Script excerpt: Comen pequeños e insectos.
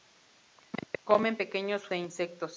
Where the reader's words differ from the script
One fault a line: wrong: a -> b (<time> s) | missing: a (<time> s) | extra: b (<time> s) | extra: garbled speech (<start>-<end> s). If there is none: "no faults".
no faults